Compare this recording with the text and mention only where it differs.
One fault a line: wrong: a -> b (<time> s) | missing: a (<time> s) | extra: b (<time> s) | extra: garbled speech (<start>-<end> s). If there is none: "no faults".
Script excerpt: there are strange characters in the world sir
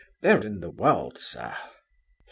missing: are strange characters (0.4 s)